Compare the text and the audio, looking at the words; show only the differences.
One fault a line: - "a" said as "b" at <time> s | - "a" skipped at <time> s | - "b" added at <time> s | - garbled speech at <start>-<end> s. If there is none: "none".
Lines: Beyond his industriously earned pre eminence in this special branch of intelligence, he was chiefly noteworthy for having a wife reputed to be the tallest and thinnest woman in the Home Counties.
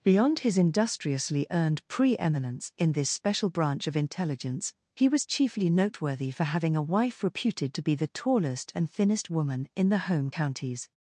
none